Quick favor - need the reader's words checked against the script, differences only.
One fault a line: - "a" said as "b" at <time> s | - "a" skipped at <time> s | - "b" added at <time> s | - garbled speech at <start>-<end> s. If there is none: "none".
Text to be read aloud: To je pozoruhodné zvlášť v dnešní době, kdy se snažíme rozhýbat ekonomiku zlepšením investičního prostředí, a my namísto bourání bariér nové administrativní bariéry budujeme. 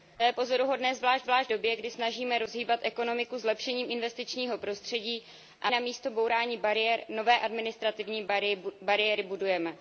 - "dnešní" said as "zvlášť" at 1.2 s
- "se" skipped at 1.9 s
- "my" skipped at 5.7 s